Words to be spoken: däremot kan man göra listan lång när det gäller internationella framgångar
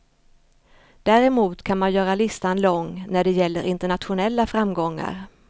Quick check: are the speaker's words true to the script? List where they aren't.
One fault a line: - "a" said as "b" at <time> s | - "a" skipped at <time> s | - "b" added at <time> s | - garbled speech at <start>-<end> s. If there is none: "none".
none